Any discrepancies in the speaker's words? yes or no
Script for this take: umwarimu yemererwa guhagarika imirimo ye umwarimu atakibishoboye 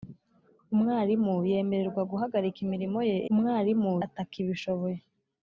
no